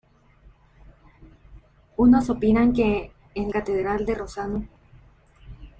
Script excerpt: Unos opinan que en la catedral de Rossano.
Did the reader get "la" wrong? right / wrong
wrong